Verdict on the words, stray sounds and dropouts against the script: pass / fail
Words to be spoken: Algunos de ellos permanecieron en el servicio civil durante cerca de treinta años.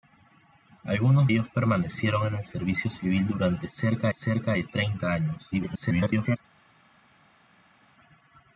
fail